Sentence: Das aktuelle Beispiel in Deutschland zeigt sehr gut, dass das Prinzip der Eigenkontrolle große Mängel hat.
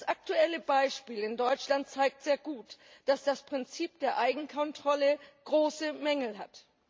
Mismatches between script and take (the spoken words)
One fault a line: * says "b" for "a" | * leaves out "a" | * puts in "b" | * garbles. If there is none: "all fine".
all fine